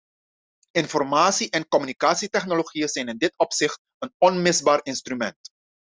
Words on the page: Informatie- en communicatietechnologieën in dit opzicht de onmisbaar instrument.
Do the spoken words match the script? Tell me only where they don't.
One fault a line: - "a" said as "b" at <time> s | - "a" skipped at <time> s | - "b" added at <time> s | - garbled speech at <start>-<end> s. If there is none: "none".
- "zijn" added at 2.9 s
- "de" said as "een" at 4.0 s